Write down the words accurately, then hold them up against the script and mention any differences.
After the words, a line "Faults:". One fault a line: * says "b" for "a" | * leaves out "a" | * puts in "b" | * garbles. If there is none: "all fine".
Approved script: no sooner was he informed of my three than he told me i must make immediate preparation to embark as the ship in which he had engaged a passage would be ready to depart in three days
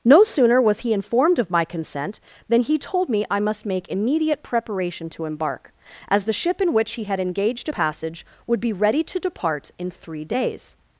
no sooner was he informed of my consent than he told me i must make immediate preparation to embark as the ship in which he had engaged a passage would be ready to depart in three days
Faults:
* says "consent" for "three"